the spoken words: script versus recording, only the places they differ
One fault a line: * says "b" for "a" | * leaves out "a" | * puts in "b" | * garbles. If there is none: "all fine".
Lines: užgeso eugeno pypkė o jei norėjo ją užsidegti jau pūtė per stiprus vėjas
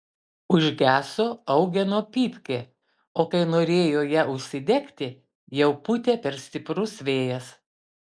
* says "kai" for "jei"